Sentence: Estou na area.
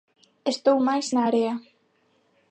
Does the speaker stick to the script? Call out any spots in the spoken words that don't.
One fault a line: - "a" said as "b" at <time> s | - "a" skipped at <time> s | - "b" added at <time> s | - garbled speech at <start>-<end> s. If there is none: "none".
- "máis" added at 0.9 s